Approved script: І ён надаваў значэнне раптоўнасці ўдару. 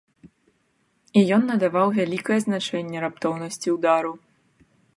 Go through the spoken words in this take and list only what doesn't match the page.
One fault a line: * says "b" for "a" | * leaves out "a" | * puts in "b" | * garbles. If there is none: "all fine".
* puts in "вялікае"